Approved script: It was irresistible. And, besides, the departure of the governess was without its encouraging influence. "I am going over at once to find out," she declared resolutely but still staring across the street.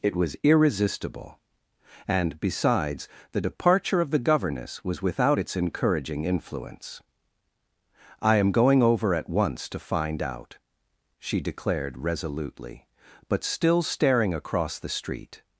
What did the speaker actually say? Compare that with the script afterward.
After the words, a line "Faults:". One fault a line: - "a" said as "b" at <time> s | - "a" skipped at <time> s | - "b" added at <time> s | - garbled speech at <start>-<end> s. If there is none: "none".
It was irresistible. And, besides, the departure of the governess was without its encouraging influence. "I am going over at once to find out," she declared resolutely but still staring across the street.
Faults:
none